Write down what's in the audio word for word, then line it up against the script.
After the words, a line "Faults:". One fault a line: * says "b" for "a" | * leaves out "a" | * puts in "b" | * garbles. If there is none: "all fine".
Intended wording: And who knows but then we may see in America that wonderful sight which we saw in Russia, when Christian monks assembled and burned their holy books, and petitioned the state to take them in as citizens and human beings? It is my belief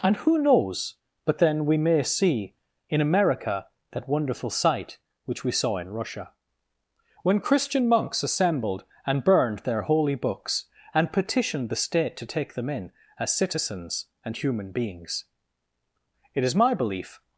And who knows but then we may see in America that wonderful sight which we saw in Russia, when Christian monks assembled and burned their holy books, and petitioned the state to take them in as citizens and human beings? It is my belief
Faults:
all fine